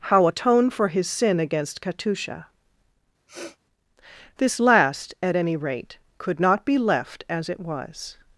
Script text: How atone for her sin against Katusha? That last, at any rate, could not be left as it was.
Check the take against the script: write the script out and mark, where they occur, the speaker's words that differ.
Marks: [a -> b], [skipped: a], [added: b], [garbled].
How atone for [her -> his] sin against Katusha? [That -> This] last, at any rate, could not be left as it was.